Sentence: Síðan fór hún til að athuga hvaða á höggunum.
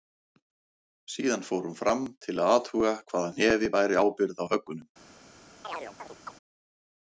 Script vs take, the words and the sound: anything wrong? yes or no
yes